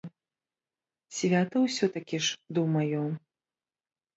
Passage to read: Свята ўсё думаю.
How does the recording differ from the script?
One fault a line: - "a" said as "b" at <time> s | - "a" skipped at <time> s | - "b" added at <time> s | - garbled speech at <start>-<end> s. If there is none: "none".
- "такі ж" added at 2.0 s